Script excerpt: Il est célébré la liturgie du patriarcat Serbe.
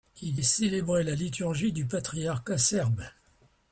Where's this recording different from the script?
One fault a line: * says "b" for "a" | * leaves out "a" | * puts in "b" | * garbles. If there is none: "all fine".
all fine